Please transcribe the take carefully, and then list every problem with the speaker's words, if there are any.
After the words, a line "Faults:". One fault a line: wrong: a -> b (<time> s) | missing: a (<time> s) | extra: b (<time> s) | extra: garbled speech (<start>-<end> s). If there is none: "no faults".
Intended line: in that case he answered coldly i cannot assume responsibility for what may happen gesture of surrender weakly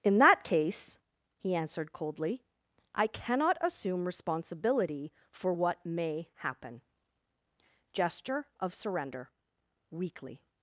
in that case he answered coldly i cannot assume responsibility for what may happen gesture of surrender weakly
Faults:
no faults